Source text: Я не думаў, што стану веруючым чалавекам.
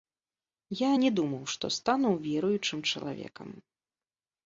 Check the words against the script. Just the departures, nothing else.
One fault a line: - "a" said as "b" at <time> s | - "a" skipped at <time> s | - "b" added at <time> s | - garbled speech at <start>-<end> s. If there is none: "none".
none